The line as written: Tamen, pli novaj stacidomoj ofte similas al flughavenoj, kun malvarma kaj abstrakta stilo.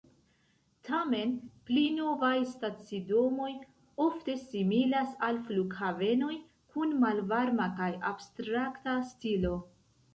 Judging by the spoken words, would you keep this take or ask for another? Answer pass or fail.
pass